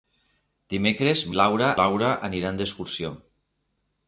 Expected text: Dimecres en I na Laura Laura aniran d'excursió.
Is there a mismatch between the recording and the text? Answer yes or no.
no